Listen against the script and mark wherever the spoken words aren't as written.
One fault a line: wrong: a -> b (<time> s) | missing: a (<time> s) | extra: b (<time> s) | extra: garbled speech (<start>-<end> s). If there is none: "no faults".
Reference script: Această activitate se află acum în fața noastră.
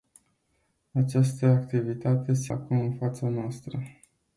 missing: află (2.5 s)